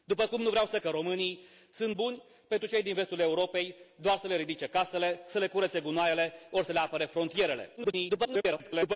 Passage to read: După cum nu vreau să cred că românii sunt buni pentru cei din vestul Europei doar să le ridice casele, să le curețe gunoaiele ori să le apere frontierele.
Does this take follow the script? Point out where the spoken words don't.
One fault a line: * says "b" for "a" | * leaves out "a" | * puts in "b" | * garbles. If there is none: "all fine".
* leaves out "cred"
* garbles